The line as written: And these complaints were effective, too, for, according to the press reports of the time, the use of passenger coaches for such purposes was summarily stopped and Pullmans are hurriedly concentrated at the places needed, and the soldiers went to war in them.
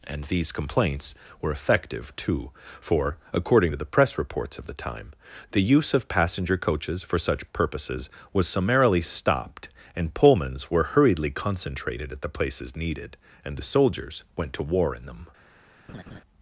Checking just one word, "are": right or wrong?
wrong